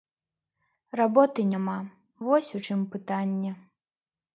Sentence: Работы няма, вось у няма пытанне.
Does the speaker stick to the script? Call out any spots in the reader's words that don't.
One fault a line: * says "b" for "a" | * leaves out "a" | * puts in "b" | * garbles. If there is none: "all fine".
* says "чым" for "няма"